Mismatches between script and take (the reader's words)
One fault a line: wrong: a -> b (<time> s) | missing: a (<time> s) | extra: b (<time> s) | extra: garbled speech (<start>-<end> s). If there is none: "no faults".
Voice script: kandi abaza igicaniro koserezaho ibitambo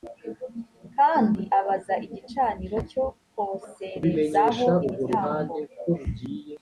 extra: cyo (2.9 s)